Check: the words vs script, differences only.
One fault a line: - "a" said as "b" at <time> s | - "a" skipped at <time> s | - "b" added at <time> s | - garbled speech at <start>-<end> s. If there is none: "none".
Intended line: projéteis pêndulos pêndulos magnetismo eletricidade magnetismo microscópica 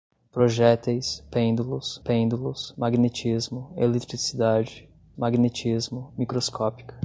none